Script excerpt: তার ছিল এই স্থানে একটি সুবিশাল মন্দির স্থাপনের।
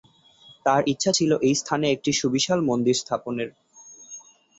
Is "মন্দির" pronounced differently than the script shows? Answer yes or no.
no